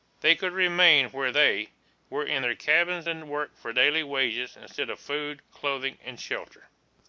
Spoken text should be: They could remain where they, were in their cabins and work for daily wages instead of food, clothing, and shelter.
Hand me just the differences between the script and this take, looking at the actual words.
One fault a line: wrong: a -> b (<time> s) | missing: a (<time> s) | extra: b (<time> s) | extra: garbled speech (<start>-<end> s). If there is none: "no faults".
no faults